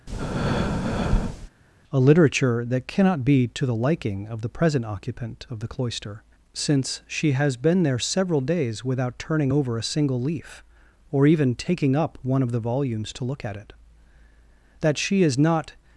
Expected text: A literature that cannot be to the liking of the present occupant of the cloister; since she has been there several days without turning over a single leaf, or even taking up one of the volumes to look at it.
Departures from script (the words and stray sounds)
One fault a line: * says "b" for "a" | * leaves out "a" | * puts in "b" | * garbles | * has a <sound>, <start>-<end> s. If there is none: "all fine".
* has a breath, 0.1-1.5 s
* puts in "That she is not"